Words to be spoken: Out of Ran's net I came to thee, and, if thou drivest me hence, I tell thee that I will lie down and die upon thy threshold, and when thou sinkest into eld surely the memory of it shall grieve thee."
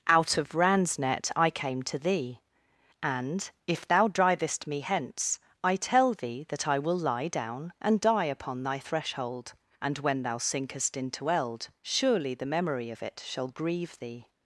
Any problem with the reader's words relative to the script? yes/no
no